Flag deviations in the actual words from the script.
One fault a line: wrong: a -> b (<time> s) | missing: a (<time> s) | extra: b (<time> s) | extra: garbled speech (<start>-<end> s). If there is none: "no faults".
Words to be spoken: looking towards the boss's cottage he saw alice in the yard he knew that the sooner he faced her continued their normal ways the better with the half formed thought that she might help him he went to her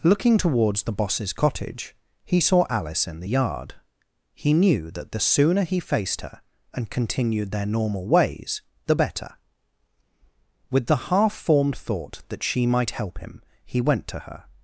extra: and (6.7 s)